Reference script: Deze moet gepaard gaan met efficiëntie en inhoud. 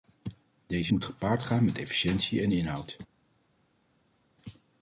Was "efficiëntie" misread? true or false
false